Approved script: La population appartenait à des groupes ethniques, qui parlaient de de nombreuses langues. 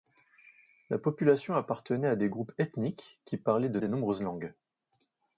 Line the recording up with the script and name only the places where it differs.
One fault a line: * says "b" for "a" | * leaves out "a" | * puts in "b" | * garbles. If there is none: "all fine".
all fine